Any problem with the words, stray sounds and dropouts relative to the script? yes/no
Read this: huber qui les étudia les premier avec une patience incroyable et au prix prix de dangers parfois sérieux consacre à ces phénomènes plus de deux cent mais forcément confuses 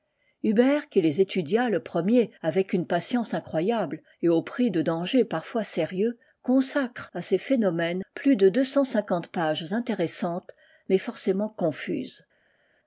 yes